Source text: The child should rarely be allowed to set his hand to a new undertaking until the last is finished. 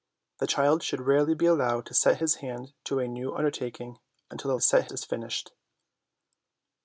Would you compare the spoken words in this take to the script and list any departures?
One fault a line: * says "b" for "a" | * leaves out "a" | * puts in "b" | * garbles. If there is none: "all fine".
* says "set" for "last"